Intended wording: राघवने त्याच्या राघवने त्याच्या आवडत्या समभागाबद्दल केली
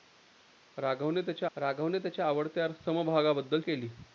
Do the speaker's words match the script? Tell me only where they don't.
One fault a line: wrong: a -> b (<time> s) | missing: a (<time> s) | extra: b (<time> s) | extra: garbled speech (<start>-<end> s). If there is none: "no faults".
no faults